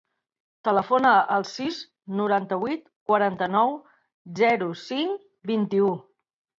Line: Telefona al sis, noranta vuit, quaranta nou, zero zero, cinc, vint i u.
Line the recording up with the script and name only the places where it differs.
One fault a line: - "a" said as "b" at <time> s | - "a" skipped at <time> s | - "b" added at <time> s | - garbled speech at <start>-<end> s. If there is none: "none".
- "zero" skipped at 4.7 s